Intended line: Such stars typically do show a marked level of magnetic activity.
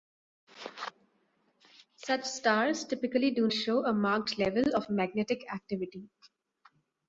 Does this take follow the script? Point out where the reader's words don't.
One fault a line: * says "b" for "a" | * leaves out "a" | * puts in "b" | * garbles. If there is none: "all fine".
all fine